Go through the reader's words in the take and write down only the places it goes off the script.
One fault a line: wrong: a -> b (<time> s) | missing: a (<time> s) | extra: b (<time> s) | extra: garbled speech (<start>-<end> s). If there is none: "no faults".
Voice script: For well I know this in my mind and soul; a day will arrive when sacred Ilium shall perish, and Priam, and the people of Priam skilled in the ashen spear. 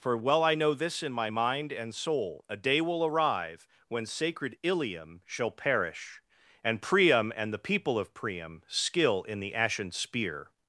wrong: skilled -> skill (8.7 s)